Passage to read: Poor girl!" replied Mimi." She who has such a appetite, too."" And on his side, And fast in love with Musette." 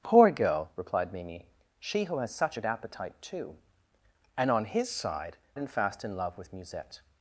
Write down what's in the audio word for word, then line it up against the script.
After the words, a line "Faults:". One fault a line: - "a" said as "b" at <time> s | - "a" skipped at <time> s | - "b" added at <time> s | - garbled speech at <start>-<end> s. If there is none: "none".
Poor girl!" replied Mimi." She who has such a appetite, too."" And on his side, And fast in love with Musette."
Faults:
none